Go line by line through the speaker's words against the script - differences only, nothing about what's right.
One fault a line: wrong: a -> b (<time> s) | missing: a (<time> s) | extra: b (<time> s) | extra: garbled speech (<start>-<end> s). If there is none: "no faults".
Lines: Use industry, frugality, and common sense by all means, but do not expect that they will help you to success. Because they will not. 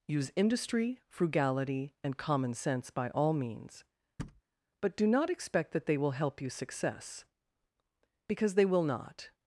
missing: to (6.5 s)